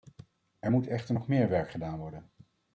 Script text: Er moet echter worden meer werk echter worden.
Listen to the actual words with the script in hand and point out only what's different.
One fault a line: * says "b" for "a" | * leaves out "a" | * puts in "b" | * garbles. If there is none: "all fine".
* says "nog" for "worden"
* says "gedaan" for "echter"